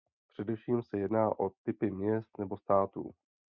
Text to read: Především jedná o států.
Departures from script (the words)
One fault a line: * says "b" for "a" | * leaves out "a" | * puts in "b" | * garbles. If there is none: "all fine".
* puts in "se"
* puts in "typy měst nebo"